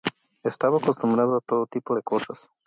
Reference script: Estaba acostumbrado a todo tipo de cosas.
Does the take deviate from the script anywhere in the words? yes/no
no